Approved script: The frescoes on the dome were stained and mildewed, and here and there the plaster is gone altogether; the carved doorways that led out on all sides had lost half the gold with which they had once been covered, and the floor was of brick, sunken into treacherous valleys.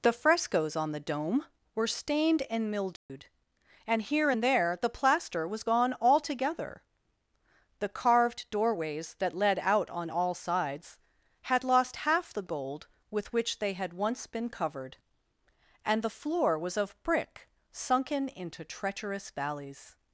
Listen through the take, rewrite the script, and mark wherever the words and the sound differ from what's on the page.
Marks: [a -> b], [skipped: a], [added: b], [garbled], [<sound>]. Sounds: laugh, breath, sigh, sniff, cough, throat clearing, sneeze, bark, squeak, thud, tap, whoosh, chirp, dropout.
The frescoes on the dome were stained and mildewed, [dropout] and here and there the plaster [is -> was] gone altogether; the carved doorways that led out on all sides had lost half the gold with which they had once been covered, and the floor was of brick, sunken into treacherous valleys.